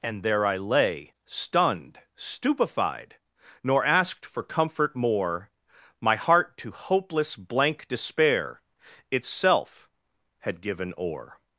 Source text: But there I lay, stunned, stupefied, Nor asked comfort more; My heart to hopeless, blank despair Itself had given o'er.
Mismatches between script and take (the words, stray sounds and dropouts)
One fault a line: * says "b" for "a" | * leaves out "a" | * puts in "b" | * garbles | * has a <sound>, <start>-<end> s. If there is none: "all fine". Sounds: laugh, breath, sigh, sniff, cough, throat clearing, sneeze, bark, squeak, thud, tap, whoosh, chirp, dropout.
* says "And" for "But"
* puts in "for"